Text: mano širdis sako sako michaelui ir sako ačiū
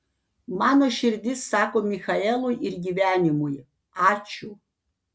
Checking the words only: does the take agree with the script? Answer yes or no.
no